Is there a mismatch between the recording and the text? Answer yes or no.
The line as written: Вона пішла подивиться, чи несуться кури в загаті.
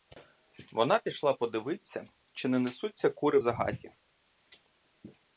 yes